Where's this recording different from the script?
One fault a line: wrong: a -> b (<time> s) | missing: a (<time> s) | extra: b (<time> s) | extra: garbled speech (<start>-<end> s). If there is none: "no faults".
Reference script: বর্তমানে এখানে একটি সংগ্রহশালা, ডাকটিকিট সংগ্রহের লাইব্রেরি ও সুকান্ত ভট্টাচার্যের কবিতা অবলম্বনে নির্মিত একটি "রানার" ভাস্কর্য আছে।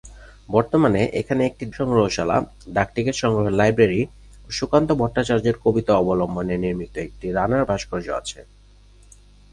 no faults